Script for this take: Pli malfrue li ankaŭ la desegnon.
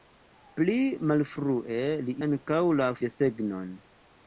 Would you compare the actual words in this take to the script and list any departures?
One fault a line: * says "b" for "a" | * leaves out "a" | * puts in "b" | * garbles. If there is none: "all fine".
all fine